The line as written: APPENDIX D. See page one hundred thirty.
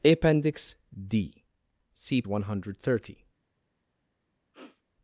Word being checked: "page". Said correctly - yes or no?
no